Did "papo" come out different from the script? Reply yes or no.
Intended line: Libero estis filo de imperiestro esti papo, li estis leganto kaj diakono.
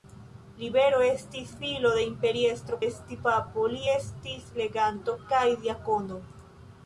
no